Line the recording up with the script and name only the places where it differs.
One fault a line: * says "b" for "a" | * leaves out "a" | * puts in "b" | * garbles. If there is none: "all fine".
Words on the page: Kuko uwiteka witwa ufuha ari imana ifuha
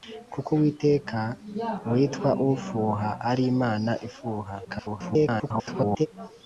* garbles